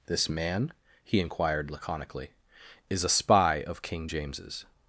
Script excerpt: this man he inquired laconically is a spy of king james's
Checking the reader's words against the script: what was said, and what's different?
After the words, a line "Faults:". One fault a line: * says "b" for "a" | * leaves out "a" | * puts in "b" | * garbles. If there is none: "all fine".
this man he inquired laconically is a spy of king james's
Faults:
all fine